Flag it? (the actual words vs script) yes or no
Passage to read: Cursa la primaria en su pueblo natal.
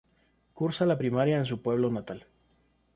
no